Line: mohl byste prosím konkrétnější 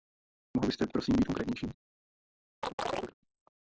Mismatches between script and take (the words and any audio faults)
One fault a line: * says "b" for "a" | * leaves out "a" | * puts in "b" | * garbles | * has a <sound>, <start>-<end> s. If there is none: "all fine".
* puts in "být"
* has a chirp, 2.6-3.1 s